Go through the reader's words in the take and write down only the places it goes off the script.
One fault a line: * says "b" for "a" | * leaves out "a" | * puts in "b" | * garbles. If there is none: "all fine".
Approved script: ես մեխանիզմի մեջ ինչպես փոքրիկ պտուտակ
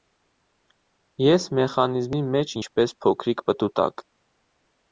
all fine